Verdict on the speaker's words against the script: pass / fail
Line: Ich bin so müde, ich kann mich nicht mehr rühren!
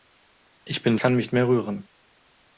fail